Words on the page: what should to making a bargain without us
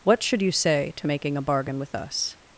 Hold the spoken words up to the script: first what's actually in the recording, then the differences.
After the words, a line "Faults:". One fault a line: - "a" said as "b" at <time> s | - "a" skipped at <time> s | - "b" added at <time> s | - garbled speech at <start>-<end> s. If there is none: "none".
what should you say to making a bargain with us
Faults:
- "you say" added at 0.4 s
- "without" said as "with" at 1.8 s